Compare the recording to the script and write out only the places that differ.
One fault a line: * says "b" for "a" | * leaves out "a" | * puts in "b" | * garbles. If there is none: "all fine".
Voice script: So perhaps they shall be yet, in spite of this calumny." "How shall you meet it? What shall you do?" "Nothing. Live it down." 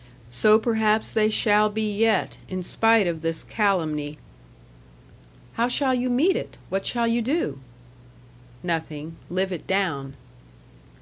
all fine